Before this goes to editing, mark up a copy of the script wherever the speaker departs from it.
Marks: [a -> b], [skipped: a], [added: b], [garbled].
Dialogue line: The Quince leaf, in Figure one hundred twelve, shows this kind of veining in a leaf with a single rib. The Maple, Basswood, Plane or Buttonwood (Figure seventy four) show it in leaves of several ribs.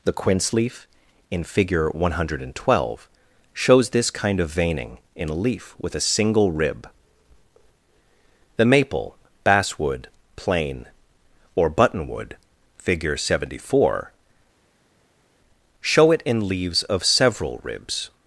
The Quince leaf, in Figure one hundred twelve, shows this kind of veining in a leaf with a single rib. The Maple, Basswood, Plane or Buttonwood (Figure seventy four) show it in leaves of several ribs.